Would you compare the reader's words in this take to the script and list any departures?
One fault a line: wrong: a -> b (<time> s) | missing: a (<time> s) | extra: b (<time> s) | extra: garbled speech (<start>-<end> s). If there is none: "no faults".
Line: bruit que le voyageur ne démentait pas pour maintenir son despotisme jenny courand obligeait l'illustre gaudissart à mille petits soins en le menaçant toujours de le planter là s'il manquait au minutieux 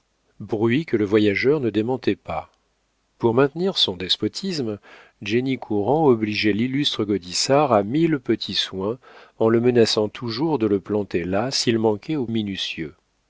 no faults